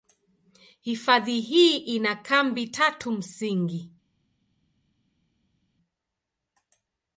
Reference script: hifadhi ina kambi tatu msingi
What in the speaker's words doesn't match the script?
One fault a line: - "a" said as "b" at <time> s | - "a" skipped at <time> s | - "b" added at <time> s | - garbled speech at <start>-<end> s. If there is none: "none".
- "hii" added at 1.4 s